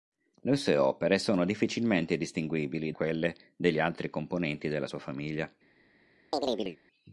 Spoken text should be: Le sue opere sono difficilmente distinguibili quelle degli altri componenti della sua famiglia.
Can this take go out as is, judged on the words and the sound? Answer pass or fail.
fail